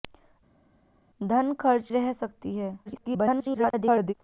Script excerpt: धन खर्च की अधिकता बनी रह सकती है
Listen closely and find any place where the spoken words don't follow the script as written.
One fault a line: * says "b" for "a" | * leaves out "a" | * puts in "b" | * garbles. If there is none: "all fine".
* leaves out "की अधिकता बनी"
* garbles